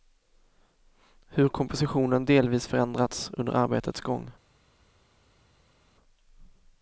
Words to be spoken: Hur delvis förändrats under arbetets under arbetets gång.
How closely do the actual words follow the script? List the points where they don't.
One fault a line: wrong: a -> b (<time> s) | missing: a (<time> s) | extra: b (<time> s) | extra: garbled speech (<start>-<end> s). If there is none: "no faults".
extra: kompositionen (1.5 s)
missing: under arbetets (4.0 s)